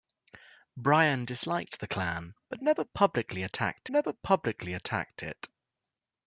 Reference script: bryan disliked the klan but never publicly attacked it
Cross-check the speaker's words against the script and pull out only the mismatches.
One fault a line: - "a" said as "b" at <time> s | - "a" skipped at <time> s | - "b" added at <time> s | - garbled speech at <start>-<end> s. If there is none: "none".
- "never publicly attacked" added at 3.9 s